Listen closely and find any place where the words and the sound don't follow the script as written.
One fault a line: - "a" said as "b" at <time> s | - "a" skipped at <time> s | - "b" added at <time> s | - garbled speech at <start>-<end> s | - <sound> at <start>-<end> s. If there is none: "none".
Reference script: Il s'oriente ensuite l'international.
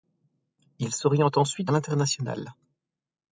none